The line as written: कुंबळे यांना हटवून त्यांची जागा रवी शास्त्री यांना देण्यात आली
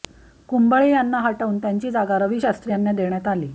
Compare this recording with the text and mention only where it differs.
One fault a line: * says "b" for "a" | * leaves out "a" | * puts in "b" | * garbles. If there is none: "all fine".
all fine